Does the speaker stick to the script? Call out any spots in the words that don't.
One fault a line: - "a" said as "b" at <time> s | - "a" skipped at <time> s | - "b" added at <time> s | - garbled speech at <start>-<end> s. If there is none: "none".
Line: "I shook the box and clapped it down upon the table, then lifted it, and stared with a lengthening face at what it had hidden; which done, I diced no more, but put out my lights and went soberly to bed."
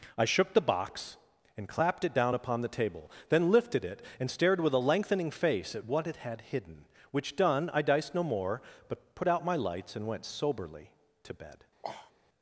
none